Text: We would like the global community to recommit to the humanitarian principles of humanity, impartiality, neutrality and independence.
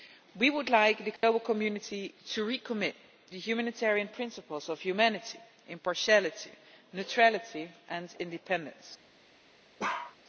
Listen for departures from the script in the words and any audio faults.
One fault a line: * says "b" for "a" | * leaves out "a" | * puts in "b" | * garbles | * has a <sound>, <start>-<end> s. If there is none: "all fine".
* has a dropout, 1.2-1.2 s
* leaves out "to"
* has a bark, 9.8-10.2 s